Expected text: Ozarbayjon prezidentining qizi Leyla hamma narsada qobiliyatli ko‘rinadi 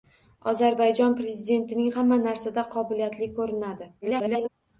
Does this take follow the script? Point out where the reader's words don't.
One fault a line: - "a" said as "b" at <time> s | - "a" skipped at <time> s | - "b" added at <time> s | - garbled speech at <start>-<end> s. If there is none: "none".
- "qizi Leyla" skipped at 1.9 s
- garbled speech at 4.0-4.5 s